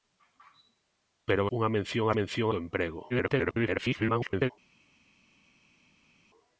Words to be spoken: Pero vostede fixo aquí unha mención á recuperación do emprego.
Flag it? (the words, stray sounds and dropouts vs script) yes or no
yes